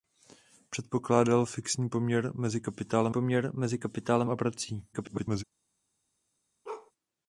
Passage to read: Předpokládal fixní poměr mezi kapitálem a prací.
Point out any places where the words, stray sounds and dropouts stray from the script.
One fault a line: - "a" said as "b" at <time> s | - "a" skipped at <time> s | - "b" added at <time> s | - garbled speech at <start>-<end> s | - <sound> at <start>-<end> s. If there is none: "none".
- "poměr mezi kapitálem" added at 3.1 s
- garbled speech at 4.9-5.4 s
- bark at 6.6-6.9 s